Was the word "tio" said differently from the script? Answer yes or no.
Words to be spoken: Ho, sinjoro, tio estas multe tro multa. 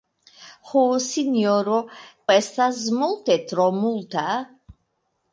yes